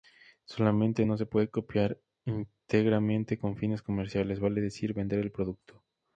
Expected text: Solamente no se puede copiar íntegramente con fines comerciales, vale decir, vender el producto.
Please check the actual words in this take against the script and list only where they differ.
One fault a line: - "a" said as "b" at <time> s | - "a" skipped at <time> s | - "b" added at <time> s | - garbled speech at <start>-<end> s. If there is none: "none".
none